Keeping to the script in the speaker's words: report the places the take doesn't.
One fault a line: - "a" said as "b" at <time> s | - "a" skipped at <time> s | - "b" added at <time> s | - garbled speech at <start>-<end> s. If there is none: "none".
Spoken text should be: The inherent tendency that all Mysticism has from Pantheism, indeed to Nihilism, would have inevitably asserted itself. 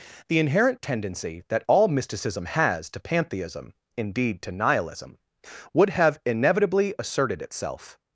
- "from" said as "to" at 2.9 s